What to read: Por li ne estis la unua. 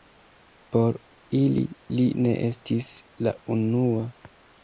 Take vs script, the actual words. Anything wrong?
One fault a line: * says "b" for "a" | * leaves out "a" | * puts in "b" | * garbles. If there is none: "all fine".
* puts in "ili"